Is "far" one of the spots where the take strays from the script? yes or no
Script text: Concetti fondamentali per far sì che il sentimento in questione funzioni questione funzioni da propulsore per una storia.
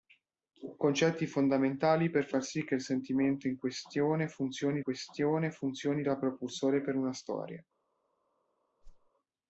no